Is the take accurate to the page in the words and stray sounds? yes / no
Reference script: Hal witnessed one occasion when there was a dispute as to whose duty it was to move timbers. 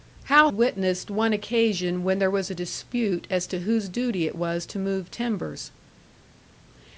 yes